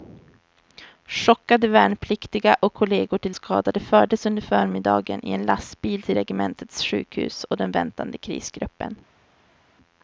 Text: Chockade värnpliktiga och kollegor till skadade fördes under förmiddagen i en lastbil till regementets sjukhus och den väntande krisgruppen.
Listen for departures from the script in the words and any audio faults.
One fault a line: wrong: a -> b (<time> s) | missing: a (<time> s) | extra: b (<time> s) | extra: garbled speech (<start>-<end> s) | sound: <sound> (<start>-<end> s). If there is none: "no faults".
no faults